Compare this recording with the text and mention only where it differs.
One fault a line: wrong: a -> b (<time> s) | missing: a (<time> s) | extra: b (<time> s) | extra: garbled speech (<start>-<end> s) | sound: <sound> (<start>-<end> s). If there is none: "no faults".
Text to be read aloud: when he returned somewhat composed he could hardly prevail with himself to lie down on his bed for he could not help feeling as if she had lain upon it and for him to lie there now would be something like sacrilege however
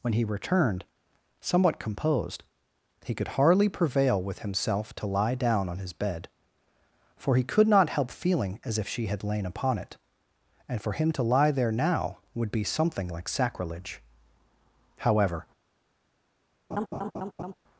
sound: laugh (16.7-17.5 s)